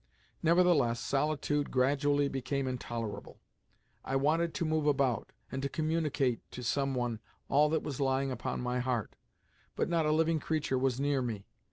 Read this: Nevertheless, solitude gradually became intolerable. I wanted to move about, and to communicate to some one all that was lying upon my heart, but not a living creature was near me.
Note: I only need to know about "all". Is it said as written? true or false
true